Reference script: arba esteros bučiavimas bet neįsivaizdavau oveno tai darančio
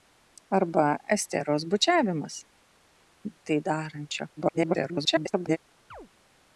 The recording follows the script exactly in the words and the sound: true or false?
false